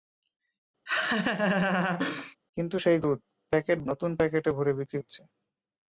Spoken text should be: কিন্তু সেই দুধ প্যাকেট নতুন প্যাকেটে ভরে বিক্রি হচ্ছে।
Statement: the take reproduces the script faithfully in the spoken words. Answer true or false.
true